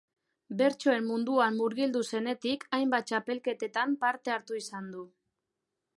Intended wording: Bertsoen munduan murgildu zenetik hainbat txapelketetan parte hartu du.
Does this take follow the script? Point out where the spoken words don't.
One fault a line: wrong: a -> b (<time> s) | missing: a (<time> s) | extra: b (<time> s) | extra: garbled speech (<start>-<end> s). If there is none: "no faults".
extra: izan (4.6 s)